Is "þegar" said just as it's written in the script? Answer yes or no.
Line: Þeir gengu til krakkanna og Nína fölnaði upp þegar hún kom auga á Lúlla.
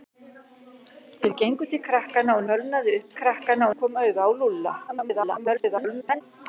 no